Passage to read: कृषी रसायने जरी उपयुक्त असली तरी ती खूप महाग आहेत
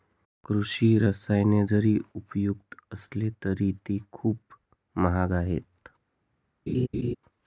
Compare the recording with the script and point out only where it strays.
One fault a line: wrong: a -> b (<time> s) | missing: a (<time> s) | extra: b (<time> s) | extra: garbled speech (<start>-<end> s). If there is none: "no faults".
no faults